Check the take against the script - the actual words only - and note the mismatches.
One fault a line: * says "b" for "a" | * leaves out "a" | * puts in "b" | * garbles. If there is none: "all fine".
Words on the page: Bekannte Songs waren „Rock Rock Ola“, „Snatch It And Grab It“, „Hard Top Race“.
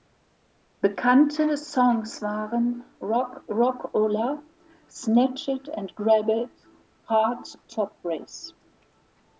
all fine